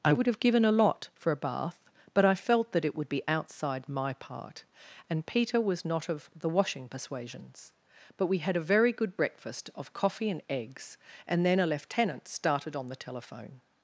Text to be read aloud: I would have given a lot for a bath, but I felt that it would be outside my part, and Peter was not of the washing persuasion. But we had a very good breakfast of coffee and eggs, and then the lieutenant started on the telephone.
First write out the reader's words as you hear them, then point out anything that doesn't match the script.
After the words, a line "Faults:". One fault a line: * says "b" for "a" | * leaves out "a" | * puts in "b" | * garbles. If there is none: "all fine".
I would have given a lot for a bath, but I felt that it would be outside my part, and Peter was not of the washing persuasions. But we had a very good breakfast of coffee and eggs, and then a lieutenant started on the telephone.
Faults:
* says "persuasions" for "persuasion"
* says "a" for "the"